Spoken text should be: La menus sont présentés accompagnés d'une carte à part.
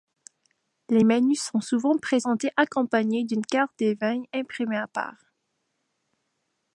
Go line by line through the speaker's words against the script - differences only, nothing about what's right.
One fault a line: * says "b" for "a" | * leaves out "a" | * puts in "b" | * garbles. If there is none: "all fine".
* says "Les" for "La"
* puts in "souvent"
* puts in "des vins imprimée"